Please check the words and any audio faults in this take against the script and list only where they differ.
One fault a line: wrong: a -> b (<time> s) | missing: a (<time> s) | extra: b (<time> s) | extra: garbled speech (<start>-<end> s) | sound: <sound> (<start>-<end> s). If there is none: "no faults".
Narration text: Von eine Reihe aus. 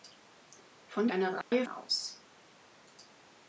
sound: dropout (1.4-1.5 s)